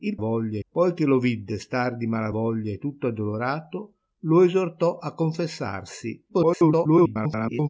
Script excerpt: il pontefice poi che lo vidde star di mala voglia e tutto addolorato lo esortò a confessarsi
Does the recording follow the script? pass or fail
fail